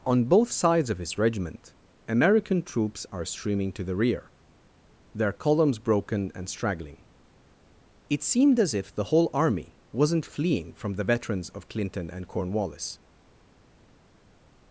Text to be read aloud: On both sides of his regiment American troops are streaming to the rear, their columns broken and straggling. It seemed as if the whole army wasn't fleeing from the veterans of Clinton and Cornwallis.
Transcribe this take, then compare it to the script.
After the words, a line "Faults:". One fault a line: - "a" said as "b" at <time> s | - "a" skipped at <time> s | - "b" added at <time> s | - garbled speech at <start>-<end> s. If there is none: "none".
On both sides of his regiment American troops are streaming to the rear, their columns broken and straggling. It seemed as if the whole army wasn't fleeing from the veterans of Clinton and Cornwallis.
Faults:
none